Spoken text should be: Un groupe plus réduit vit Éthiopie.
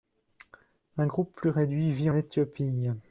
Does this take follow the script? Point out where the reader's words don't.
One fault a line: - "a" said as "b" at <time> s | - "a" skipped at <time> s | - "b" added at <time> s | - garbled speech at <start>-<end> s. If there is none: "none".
none